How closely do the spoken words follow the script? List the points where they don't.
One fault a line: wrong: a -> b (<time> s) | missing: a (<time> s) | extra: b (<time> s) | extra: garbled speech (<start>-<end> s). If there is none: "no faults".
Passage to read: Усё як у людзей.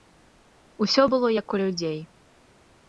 extra: было (1.1 s)